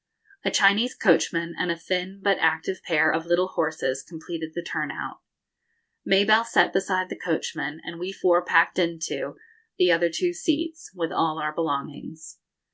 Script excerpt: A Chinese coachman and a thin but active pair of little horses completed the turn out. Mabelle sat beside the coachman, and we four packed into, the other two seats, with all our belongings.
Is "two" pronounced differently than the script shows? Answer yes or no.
no